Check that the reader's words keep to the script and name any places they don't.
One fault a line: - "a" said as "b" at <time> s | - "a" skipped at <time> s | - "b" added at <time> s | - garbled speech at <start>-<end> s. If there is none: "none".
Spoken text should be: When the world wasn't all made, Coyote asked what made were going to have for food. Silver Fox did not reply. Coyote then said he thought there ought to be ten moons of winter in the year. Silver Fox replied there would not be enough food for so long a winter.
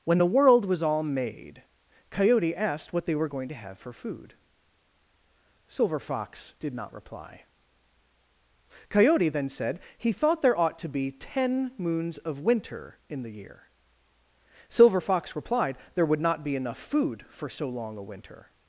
- "wasn't" said as "was" at 0.7 s
- "made" said as "they" at 3.1 s